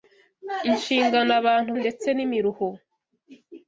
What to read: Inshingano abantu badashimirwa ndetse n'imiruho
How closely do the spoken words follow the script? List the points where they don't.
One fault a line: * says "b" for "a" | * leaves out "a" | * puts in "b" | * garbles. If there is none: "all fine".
* leaves out "badashimirwa"